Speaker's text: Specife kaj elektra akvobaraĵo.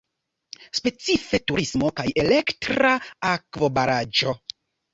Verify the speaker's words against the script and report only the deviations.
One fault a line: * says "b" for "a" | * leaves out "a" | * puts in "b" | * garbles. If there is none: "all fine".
* puts in "turismo"